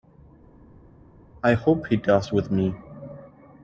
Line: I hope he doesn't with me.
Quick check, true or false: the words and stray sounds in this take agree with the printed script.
false